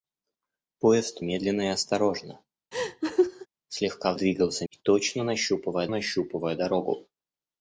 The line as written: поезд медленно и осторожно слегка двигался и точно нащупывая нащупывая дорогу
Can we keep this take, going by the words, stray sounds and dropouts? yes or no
no